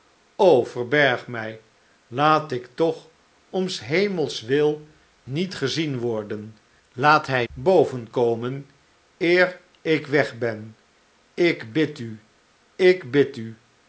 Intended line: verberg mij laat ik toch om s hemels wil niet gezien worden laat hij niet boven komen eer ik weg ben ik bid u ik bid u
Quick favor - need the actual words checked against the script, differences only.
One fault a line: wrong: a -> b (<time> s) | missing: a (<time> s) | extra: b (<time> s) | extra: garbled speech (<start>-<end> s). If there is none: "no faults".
missing: niet (7.5 s)